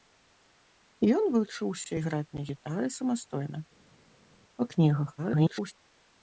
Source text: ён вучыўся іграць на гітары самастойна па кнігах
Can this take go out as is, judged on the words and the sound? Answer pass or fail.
fail